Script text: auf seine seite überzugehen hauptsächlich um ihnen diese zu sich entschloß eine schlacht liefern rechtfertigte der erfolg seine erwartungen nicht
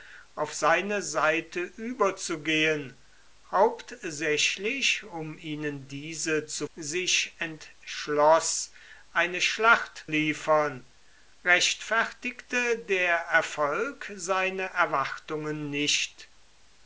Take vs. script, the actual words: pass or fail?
pass